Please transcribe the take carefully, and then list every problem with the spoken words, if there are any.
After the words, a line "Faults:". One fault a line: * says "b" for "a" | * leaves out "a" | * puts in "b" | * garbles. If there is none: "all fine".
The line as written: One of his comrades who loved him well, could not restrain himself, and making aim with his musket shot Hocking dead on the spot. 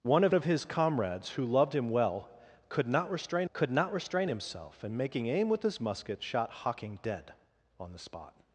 One of of his comrades who loved him well, could not restrain could not restrain himself, and making aim with his musket shot Hocking dead on the spot.
Faults:
* puts in "of"
* puts in "could not restrain"